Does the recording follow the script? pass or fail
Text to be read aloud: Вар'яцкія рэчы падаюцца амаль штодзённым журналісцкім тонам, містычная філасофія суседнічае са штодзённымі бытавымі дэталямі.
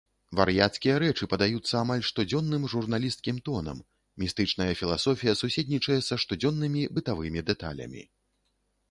pass